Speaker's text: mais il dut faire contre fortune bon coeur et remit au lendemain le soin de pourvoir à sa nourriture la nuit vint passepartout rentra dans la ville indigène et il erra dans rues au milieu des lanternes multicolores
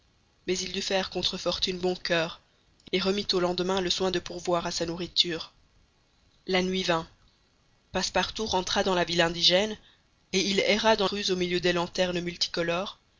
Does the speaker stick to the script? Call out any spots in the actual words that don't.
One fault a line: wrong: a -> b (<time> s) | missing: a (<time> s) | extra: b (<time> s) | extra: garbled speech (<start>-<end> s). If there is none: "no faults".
no faults